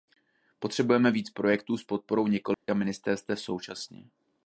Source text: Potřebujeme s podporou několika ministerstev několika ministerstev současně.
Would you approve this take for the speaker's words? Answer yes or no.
no